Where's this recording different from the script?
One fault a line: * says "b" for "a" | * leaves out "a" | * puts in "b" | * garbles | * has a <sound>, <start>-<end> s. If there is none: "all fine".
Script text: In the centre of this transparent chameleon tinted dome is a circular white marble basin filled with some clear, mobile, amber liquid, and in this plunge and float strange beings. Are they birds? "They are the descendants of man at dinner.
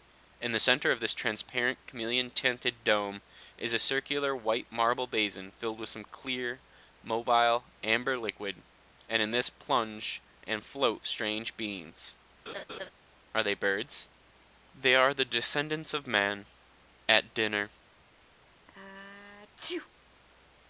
* has a laugh, 12.5-12.9 s
* has a sneeze, 18.7-19.9 s